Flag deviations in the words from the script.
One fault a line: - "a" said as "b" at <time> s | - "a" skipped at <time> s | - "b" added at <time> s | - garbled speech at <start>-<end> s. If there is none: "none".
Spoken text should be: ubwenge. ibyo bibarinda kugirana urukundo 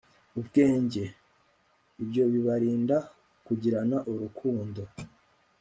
none